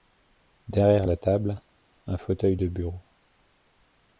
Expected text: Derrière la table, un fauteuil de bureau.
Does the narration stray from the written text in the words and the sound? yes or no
no